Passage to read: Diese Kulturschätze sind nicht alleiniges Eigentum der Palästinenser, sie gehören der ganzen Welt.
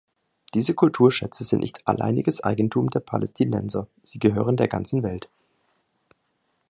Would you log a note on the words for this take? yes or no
no